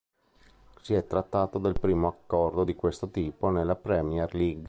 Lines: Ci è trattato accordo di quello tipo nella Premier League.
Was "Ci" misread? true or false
true